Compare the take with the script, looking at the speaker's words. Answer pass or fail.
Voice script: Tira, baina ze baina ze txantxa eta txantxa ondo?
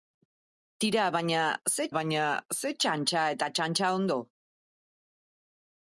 pass